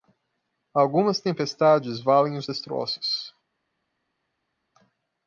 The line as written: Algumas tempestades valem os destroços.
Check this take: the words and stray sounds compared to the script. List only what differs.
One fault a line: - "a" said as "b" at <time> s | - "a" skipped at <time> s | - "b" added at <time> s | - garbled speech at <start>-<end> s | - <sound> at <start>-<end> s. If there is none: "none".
none